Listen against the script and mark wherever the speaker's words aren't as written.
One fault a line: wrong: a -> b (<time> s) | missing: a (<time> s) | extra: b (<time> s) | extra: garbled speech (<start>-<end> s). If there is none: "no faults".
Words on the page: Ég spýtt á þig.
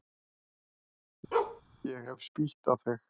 extra: hef (2.1 s)